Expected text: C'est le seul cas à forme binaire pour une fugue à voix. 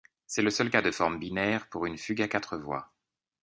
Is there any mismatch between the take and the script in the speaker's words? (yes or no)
yes